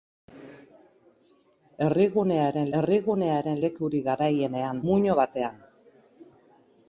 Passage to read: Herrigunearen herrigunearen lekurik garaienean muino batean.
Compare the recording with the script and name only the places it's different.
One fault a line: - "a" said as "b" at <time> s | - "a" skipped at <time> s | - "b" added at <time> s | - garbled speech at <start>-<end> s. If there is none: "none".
none